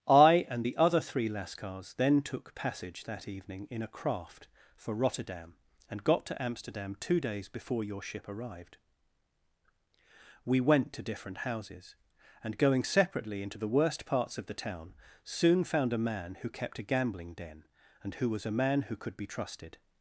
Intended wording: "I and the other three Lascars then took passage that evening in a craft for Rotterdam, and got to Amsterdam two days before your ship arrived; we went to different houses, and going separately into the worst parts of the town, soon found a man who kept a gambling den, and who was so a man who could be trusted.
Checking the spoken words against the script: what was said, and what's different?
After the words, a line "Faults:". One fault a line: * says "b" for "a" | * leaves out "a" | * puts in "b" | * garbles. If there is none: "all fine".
"I and the other three Lascars then took passage that evening in a craft for Rotterdam, and got to Amsterdam two days before your ship arrived; we went to different houses, and going separately into the worst parts of the town, soon found a man who kept a gambling den, and who was a man who could be trusted.
Faults:
* leaves out "so"